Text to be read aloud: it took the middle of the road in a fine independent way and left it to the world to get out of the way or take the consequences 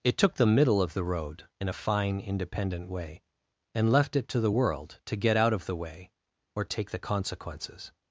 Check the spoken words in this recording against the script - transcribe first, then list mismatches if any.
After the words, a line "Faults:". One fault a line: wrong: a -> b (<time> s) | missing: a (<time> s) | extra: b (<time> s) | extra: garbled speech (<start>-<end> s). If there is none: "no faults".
it took the middle of the road in a fine independent way and left it to the world to get out of the way or take the consequences
Faults:
no faults